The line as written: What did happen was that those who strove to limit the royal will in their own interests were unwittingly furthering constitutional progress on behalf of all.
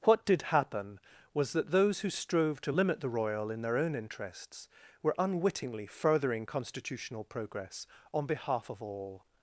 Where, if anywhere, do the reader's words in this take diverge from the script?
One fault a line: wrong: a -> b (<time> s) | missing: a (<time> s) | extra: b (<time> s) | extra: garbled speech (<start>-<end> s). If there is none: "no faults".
missing: will (3.5 s)